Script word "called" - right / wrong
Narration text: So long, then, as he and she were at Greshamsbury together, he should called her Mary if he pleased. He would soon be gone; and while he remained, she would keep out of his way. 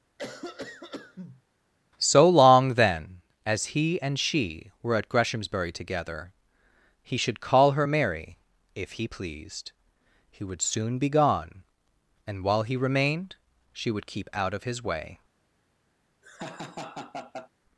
wrong